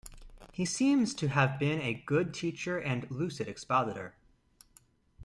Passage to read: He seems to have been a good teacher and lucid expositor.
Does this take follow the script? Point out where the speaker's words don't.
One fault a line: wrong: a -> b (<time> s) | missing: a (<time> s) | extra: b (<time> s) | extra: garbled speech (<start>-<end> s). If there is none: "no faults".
no faults